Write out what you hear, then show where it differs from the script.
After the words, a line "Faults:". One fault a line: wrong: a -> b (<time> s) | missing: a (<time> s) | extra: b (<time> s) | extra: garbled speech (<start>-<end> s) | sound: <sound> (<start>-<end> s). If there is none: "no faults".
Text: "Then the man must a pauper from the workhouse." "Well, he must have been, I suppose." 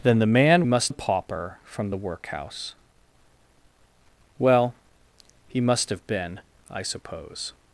"Then the man must a pauper from the workhouse." "Well, he must have been, I suppose."
Faults:
no faults